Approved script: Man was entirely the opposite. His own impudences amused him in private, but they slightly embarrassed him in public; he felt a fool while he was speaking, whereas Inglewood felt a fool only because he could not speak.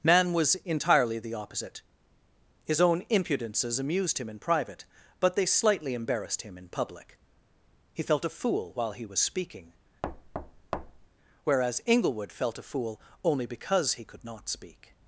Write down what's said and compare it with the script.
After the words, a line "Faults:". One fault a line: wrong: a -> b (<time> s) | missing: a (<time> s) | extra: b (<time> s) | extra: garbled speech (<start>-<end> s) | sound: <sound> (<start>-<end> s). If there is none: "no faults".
Man was entirely the opposite. His own impudences amused him in private, but they slightly embarrassed him in public; he felt a fool while he was speaking, whereas Inglewood felt a fool only because he could not speak.
Faults:
sound: thud (10.0-11.1 s)